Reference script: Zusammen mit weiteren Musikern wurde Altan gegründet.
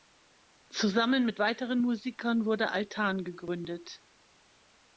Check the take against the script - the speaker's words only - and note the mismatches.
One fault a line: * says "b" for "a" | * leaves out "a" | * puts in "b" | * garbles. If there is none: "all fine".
all fine